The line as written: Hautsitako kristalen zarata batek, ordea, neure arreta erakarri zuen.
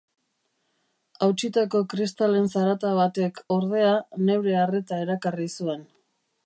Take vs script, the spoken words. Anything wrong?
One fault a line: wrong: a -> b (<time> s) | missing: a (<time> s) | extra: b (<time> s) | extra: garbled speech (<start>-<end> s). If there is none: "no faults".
no faults